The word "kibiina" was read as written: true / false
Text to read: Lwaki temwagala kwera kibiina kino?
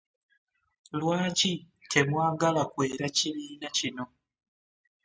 true